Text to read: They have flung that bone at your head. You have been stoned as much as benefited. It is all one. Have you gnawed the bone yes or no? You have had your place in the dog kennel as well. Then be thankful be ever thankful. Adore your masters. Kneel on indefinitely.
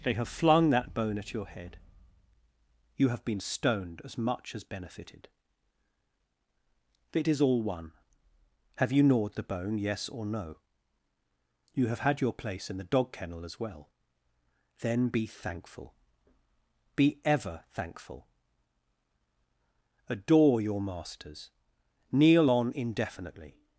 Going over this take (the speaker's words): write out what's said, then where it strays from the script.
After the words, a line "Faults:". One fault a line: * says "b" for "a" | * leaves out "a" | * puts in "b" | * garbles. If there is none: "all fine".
They have flung that bone at your head. You have been stoned as much as benefited. It is all one. Have you gnawed the bone yes or no? You have had your place in the dog kennel as well. Then be thankful be ever thankful. Adore your masters. Kneel on indefinitely.
Faults:
all fine